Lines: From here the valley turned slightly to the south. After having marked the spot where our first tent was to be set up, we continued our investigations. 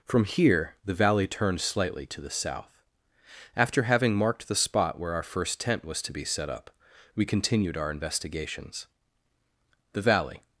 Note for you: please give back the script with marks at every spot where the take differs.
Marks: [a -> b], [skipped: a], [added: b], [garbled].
From here the valley turned slightly to the south. After having marked the spot where our first tent was to be set up, we continued our investigations. [added: The valley]